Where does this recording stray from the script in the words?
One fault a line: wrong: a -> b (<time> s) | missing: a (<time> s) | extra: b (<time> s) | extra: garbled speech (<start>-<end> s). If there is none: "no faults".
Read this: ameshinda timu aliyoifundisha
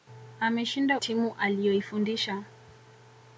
no faults